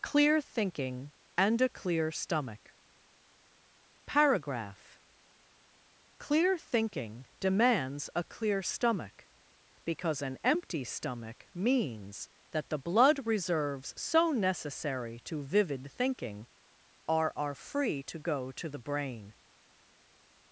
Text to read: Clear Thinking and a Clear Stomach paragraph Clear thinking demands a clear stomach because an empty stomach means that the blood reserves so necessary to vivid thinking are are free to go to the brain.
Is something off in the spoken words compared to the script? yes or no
no